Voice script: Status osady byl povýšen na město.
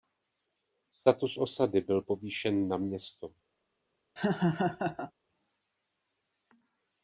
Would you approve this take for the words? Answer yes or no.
yes